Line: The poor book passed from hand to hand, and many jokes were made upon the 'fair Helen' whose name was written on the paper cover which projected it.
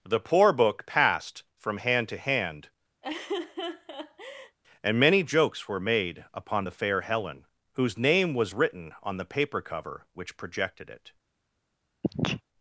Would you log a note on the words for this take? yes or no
no